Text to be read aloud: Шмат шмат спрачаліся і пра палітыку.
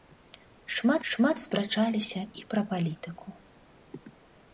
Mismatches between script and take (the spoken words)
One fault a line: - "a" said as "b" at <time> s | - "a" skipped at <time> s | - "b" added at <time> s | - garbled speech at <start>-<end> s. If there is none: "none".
none